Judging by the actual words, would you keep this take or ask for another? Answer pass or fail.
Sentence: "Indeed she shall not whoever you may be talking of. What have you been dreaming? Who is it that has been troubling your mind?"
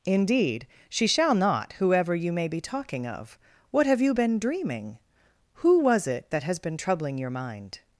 fail